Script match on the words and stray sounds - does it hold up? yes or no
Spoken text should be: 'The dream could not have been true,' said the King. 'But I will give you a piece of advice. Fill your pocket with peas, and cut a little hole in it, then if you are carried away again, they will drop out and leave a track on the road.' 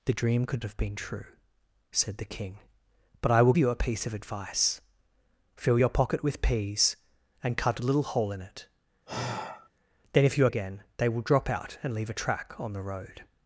no